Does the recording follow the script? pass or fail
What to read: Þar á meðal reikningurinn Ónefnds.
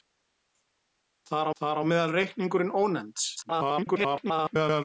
fail